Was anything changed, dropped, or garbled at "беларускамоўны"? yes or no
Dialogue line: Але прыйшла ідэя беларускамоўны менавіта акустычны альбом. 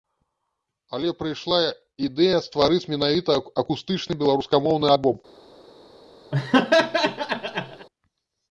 yes